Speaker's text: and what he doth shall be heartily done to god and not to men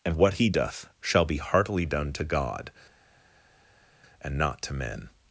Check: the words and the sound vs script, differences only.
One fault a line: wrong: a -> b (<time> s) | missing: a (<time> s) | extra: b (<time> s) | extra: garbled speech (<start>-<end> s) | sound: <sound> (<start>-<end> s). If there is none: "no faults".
no faults